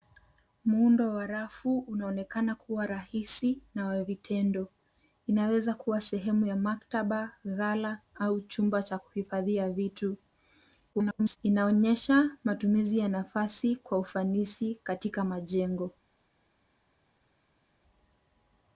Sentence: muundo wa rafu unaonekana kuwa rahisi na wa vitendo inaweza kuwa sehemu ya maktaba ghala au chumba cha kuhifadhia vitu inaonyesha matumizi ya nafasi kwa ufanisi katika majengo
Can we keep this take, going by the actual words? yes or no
no